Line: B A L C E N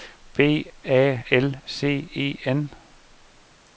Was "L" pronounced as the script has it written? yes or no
yes